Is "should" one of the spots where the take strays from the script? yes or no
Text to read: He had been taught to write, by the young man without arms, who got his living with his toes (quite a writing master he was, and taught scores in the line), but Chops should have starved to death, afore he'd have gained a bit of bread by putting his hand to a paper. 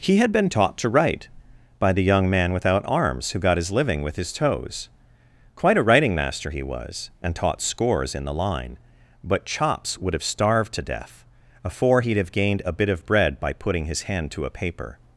yes